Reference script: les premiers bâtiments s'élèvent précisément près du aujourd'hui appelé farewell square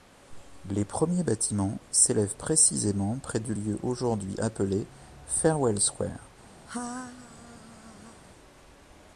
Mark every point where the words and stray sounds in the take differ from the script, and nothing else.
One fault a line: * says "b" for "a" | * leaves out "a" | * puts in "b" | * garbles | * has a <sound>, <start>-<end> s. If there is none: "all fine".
* puts in "lieu"
* has a laugh, 6.7-8.2 s